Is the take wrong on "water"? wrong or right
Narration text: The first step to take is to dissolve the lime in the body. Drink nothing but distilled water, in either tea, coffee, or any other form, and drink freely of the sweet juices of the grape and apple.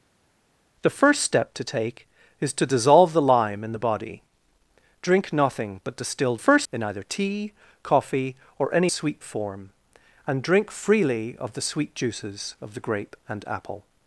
wrong